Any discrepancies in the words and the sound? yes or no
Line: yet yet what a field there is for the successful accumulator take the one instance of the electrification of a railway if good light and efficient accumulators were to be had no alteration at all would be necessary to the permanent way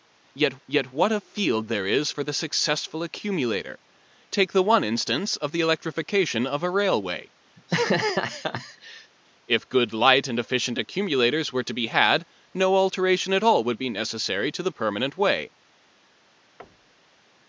yes